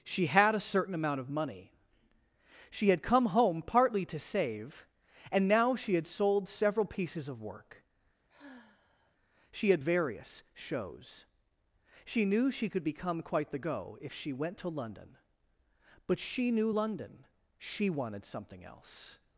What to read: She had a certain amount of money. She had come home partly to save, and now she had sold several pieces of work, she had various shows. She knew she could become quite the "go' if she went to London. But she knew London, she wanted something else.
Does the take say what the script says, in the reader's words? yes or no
yes